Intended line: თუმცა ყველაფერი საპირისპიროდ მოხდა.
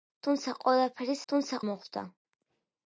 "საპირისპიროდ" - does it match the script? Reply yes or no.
no